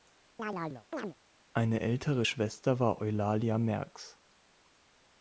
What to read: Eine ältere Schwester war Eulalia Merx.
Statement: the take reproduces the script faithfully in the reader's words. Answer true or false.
true